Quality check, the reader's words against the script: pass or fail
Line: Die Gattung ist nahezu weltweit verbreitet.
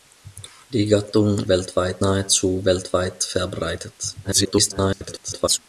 fail